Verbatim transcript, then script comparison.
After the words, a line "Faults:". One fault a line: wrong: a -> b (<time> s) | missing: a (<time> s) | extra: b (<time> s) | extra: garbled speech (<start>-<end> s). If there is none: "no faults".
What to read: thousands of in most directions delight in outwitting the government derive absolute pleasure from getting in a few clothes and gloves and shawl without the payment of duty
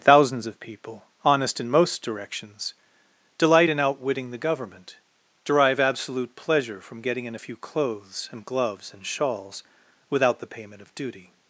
thousands of people honest in most directions delight in outwitting the government derive absolute pleasure from getting in a few clothes and gloves and shawls without the payment of duty
Faults:
extra: people honest (0.6 s)
wrong: shawl -> shawls (9.1 s)